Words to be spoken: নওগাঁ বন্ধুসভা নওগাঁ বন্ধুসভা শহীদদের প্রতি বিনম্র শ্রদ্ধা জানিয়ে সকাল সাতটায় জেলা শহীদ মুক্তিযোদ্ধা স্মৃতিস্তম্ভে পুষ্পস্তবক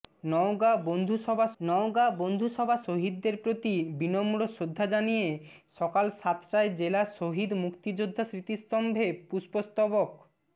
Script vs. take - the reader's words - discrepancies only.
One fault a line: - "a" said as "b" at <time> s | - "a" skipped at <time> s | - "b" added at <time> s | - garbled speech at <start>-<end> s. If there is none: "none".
none